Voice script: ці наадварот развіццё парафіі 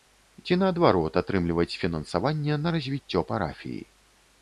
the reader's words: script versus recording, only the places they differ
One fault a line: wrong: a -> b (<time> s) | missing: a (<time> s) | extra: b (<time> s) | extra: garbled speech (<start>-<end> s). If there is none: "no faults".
extra: атрымліваць фінансаванне на (1.2 s)